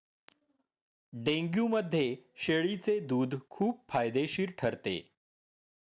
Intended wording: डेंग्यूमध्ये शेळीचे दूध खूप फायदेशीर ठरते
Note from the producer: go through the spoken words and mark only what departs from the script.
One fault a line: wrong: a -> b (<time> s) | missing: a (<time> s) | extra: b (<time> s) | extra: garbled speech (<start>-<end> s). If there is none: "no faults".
no faults